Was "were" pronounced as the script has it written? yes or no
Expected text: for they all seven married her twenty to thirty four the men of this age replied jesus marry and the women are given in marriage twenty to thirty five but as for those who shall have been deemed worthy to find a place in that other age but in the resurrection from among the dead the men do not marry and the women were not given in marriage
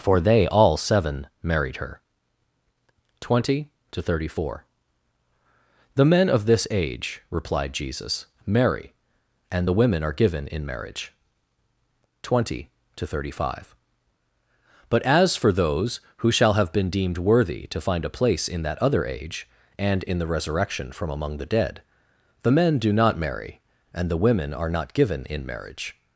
no